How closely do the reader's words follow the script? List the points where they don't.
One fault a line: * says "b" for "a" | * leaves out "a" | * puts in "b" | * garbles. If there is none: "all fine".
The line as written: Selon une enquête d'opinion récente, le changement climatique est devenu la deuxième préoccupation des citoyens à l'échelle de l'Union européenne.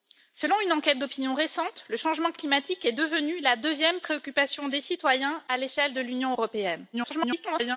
* garbles